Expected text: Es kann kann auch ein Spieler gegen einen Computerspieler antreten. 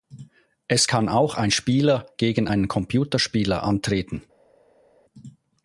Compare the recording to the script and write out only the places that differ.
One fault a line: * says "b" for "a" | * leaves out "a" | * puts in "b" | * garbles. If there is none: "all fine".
* leaves out "kann"